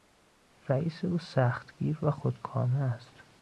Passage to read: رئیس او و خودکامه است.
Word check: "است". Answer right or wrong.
right